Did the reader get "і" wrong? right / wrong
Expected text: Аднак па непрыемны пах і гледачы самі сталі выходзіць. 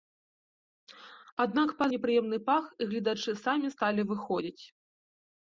right